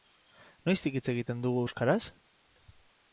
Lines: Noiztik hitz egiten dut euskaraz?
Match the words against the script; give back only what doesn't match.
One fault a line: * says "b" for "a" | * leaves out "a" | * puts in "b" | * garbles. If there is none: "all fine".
* says "dugu" for "dut"